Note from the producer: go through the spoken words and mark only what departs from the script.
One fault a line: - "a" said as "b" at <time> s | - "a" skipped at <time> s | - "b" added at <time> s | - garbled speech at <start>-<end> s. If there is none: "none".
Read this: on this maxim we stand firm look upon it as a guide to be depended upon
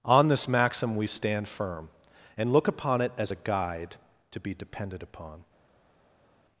- "and" added at 2.4 s